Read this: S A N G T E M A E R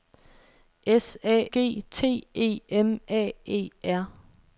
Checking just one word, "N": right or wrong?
wrong